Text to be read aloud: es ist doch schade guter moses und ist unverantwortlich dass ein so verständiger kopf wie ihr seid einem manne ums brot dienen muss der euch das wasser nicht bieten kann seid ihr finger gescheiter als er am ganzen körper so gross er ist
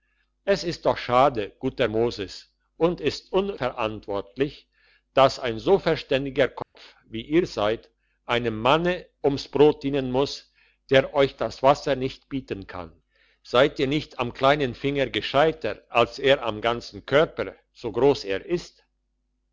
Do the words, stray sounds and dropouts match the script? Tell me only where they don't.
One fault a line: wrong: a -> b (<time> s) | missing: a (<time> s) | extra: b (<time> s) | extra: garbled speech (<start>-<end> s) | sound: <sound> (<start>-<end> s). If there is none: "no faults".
sound: dropout (6.6-6.8 s)
extra: nicht am kleinen (13.9 s)